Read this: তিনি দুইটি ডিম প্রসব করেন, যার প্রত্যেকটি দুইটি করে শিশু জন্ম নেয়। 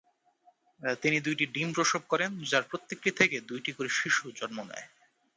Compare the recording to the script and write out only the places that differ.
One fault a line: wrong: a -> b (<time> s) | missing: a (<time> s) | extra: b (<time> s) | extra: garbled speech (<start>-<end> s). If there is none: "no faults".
extra: থেকে (3.1 s)